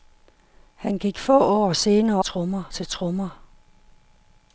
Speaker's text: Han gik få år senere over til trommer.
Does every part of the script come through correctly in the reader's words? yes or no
no